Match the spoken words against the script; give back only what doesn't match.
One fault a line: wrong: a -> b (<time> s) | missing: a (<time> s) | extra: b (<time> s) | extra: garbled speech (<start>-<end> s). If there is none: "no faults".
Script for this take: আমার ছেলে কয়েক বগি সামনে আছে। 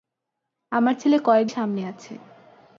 missing: বগি (1.5 s)